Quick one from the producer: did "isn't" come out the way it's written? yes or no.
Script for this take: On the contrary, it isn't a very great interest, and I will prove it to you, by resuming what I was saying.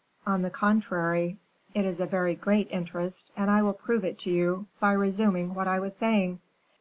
no